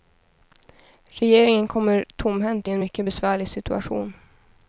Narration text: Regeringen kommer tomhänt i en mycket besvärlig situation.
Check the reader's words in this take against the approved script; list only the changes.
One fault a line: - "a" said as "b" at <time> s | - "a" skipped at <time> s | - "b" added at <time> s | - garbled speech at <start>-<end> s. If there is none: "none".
none